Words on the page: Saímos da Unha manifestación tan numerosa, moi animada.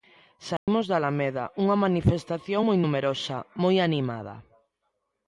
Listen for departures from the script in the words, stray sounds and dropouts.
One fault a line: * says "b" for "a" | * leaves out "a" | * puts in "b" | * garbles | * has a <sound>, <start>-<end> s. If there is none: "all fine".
* has a dropout, 0.6-0.7 s
* puts in "Alameda"
* says "moi" for "tan"